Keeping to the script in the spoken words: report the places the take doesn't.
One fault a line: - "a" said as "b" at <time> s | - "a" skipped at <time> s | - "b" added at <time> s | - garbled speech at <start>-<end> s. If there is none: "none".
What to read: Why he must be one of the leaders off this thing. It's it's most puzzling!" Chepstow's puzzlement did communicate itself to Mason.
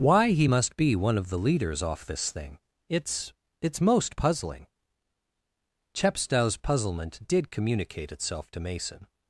none